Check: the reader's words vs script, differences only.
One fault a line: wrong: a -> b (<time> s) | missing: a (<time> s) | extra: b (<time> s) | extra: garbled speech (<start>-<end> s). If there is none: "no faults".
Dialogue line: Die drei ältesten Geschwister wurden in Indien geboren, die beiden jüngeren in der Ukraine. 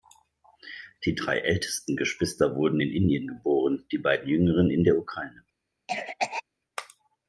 no faults